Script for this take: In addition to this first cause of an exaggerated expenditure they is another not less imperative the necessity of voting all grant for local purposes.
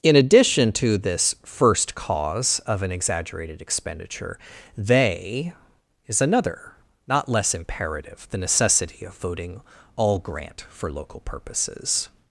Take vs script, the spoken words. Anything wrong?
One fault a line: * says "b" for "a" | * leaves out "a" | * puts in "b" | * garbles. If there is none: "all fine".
all fine